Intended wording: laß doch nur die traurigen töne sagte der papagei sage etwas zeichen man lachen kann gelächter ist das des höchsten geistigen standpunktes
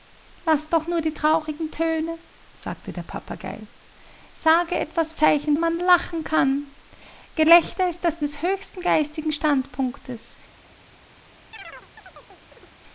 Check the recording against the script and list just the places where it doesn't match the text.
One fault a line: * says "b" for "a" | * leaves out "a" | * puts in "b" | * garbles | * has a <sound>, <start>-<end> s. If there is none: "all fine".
* has a chirp, 11.5-12.8 s